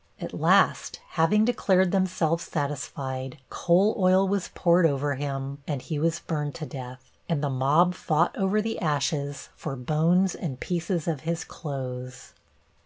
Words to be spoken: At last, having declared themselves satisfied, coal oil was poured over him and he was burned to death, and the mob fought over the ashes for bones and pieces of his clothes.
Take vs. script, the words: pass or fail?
pass